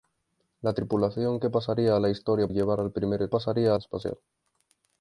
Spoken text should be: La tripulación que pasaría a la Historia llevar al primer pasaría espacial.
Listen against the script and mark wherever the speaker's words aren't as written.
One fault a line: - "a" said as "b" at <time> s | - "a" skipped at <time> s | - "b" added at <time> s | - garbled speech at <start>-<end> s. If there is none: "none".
none